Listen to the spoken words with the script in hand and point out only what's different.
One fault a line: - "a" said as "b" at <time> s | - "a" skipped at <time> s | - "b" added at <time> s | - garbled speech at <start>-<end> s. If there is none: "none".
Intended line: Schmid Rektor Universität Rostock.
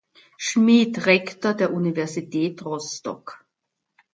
- "der" added at 1.5 s